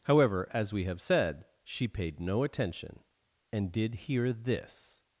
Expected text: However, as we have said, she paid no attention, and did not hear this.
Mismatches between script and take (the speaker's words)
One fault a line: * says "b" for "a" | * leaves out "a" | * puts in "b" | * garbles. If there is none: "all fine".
* leaves out "not"